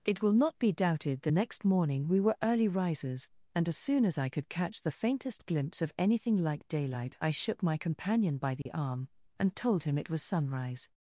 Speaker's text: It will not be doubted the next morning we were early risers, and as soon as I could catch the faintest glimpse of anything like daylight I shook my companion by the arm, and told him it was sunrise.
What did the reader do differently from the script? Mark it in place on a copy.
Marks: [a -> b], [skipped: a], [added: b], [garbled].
It will not be doubted the next morning we were early risers, and as soon as I could catch the faintest glimpse of anything like daylight I shook my companion by the arm, and told him it was sunrise.